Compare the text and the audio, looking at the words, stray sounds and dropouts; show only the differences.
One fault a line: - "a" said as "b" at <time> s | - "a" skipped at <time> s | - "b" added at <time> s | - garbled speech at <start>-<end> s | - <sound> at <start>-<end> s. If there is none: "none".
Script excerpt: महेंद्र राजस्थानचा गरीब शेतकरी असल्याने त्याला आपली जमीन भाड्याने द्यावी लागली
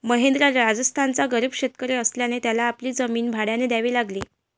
none